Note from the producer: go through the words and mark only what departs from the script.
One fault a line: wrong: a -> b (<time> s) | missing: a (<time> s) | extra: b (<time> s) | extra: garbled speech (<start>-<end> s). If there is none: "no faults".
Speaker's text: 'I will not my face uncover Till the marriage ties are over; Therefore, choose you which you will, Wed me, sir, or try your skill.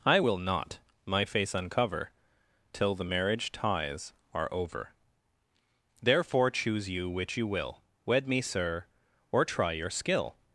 no faults